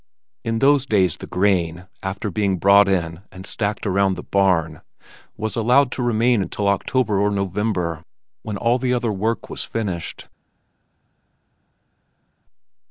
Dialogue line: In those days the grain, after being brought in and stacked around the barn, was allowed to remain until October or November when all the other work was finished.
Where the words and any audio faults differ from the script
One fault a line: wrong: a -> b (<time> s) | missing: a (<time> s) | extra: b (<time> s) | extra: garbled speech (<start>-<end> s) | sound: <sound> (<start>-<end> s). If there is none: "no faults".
no faults